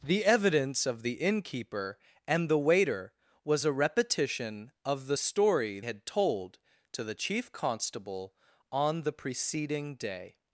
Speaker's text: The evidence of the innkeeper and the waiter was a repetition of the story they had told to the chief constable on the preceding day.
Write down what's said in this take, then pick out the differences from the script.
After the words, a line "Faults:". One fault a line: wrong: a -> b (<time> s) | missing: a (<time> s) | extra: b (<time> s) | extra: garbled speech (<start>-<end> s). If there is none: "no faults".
The evidence of the innkeeper and the waiter was a repetition of the story had told to the chief constable on the preceding day.
Faults:
missing: they (5.8 s)